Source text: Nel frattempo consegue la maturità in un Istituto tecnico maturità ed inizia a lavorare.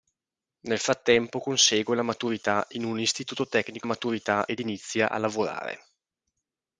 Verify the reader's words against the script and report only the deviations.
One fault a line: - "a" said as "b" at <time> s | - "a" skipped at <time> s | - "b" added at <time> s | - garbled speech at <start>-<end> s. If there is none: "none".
none